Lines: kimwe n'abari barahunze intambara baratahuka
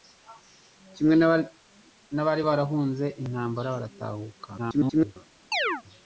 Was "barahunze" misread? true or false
false